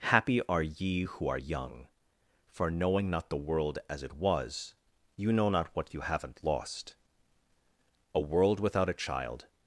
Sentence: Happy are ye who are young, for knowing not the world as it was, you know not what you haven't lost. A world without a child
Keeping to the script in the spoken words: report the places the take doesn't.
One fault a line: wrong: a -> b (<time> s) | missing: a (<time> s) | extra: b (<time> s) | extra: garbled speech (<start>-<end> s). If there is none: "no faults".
no faults